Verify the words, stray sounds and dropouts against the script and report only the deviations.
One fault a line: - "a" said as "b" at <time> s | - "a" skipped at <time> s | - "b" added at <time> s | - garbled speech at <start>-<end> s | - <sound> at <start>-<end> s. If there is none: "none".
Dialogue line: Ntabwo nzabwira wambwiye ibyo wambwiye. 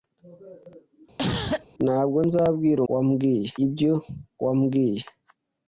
- cough at 1.2-1.7 s